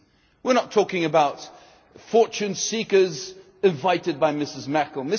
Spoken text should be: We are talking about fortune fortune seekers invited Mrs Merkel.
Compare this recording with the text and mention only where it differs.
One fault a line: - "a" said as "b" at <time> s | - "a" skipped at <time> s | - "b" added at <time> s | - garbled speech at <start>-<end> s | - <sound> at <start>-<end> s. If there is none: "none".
- "not" added at 0.6 s
- "fortune" skipped at 2.5 s
- "by" added at 4.2 s